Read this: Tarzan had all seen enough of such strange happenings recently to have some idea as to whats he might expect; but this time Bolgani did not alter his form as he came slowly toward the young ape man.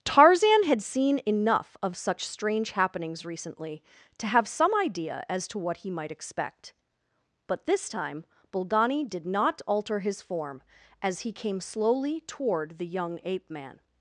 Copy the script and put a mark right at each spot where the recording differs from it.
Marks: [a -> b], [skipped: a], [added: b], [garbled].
Tarzan had [skipped: all] seen enough of such strange happenings recently to have some idea as to [whats -> what] he might expect; but this time Bolgani did not alter his form as he came slowly toward the young ape man.